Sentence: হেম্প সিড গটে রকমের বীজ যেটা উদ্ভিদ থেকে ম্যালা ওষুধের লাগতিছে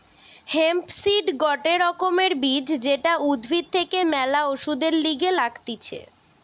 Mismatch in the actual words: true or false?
true